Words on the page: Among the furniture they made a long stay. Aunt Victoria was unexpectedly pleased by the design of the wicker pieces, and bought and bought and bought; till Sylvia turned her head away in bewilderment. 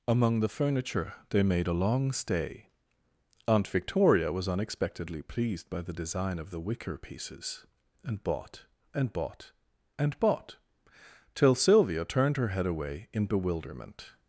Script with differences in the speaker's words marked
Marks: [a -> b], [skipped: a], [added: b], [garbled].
Among the furniture they made a long stay. Aunt Victoria was unexpectedly pleased by the design of the wicker pieces, and bought and bought and bought; till Sylvia turned her head away in bewilderment.